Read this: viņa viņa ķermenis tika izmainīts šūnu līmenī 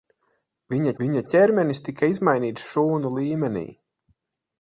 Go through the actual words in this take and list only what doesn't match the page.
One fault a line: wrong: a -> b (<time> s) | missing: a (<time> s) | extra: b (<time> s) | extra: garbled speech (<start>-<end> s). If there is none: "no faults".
no faults